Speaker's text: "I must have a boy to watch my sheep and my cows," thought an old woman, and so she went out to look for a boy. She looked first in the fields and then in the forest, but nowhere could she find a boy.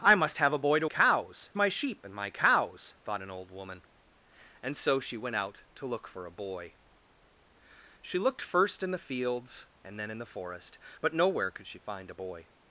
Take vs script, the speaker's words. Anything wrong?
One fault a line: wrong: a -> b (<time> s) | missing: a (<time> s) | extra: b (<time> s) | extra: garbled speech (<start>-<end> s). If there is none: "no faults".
wrong: watch -> cows (0.8 s)